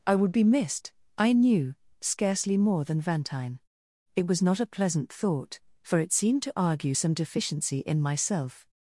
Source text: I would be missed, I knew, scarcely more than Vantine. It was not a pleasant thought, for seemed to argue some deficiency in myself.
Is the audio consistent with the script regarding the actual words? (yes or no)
no